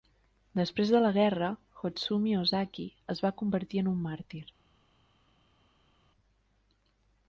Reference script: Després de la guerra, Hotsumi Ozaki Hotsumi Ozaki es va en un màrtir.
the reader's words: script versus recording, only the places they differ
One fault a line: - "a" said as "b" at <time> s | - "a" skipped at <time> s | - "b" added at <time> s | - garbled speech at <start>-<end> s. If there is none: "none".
- "Hotsumi Ozaki" skipped at 2.9 s
- "convertir" added at 3.4 s